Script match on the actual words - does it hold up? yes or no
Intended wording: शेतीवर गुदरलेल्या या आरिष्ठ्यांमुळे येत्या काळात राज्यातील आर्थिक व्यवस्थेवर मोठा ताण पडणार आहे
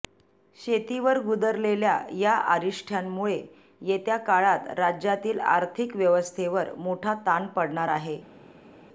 yes